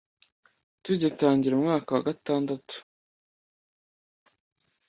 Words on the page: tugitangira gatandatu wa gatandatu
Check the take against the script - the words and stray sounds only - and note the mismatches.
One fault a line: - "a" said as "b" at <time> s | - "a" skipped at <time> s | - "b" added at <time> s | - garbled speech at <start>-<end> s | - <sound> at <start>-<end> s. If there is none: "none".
- "gatandatu" said as "umwaka" at 1.6 s